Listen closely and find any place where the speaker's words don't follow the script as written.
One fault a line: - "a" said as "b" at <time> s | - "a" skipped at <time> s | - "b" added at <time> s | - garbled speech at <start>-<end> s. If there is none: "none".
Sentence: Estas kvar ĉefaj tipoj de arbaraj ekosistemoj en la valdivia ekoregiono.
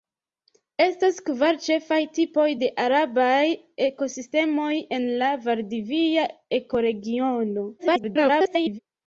- garbled speech at 7.8-8.8 s